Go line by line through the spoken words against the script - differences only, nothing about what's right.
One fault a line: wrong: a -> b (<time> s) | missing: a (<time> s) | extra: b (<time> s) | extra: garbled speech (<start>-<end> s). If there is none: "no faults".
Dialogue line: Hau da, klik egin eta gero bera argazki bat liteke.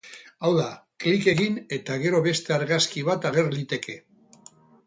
wrong: bera -> beste (2.3 s)
extra: ager (3.3 s)